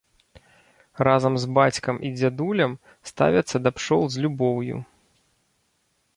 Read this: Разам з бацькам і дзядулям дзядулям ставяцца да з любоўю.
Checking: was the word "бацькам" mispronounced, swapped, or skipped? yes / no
no